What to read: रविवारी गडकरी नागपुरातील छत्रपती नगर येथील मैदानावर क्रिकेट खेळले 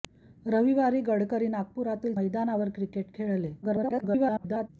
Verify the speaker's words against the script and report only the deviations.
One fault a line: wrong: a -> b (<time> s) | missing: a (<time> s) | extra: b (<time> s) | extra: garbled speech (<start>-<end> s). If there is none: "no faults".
missing: छत्रपती नगर येथील (2.1 s)
extra: garbled speech (3.6-4.7 s)